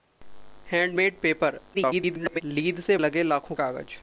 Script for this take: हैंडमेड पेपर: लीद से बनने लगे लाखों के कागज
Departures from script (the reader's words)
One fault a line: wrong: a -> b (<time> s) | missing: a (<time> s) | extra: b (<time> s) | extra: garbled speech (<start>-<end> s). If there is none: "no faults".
extra: garbled speech (1.7-2.4 s)
missing: बनने (3.0 s)
missing: के (3.6 s)